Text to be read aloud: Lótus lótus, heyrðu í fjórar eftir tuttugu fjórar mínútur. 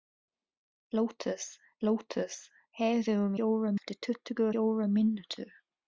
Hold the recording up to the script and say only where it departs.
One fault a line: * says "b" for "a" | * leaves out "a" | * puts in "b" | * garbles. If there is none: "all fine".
all fine